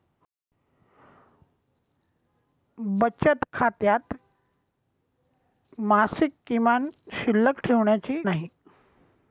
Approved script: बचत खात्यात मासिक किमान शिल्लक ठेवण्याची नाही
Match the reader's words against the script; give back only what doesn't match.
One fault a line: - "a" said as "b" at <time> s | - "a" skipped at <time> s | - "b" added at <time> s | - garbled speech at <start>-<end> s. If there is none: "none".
none